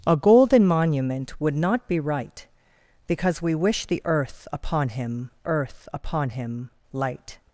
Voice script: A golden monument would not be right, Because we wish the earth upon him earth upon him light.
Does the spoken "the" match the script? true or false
true